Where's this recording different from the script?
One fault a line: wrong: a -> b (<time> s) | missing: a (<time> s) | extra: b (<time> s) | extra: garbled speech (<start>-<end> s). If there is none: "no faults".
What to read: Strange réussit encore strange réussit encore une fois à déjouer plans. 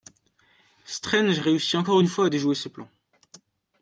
missing: strange réussit encore (2.0 s)
extra: ses (2.5 s)